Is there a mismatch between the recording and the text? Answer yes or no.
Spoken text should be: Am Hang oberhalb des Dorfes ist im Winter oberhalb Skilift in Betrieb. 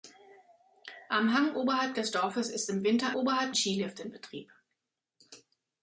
no